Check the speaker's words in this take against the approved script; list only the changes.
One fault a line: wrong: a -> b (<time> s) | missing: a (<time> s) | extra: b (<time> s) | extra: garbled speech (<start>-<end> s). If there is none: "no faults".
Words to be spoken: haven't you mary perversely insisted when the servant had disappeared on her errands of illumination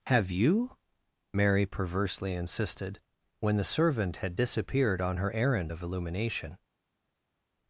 wrong: haven't -> have (0.1 s)
wrong: errands -> errand (5.3 s)